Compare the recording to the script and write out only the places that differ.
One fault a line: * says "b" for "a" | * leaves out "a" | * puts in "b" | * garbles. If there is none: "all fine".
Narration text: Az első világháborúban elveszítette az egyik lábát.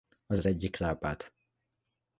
* leaves out "első világháborúban elveszítette"